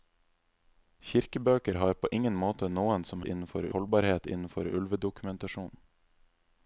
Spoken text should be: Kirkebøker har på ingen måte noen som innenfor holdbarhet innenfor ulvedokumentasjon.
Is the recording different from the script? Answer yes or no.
no